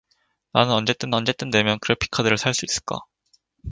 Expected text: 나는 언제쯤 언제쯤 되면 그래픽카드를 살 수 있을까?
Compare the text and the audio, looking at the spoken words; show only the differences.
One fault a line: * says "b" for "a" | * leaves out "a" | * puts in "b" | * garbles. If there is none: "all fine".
all fine